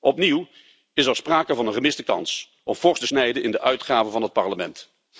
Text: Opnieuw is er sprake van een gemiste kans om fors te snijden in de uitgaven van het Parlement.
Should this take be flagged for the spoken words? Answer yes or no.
no